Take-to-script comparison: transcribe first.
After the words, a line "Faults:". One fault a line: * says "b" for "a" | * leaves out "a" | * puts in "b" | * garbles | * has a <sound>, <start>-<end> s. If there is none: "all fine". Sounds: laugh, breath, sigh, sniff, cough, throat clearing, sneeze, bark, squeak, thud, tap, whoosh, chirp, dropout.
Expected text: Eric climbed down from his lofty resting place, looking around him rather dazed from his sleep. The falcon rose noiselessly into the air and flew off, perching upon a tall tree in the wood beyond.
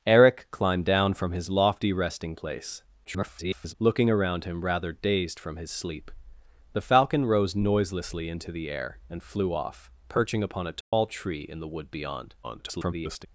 Eric climbed down from his lofty resting place, [garbled] looking around him rather dazed from his sleep. The falcon rose noiselessly into the air and flew off, perching upon a tall tree in the wood beyond. [garbled]
Faults:
* garbles
* has a dropout, 10.8-10.9 s
* garbles